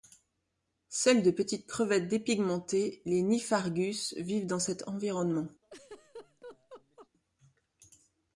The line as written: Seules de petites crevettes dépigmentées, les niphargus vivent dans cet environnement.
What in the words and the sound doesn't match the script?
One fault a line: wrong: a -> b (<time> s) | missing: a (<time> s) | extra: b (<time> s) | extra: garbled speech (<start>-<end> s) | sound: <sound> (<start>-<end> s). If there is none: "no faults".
sound: laugh (5.6-7.1 s)